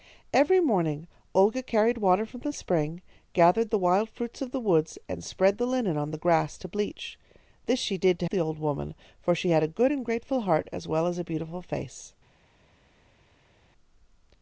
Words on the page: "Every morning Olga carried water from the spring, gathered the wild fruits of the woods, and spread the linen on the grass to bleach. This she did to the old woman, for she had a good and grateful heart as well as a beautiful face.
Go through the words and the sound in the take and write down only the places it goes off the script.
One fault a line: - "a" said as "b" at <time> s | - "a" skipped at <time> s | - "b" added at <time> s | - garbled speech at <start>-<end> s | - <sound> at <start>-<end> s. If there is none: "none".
none